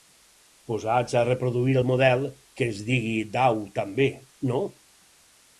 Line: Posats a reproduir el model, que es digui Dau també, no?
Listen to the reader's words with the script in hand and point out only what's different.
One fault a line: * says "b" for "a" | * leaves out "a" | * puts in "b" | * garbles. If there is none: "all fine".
all fine